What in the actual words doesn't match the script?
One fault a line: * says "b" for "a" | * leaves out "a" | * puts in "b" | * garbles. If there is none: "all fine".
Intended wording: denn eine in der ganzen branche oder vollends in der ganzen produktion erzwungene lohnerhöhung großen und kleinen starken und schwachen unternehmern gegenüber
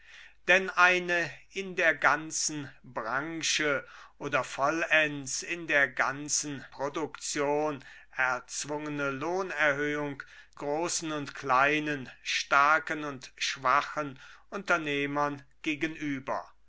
all fine